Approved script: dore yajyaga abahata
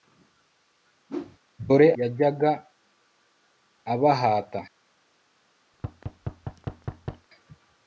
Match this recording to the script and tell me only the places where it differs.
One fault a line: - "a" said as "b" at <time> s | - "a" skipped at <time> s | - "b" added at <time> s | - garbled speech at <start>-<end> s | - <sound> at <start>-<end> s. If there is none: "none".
- whoosh at 1.1-1.4 s
- thud at 5.7-7.3 s